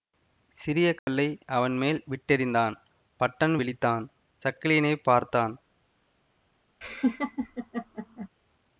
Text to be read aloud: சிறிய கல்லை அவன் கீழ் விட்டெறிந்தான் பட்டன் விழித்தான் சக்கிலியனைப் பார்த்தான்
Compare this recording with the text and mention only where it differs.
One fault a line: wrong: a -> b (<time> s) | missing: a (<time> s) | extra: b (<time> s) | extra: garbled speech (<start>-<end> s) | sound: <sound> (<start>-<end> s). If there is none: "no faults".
sound: dropout (1.0-1.1 s)
wrong: கீழ் -> மேல் (1.8 s)
sound: laugh (6.8-8.3 s)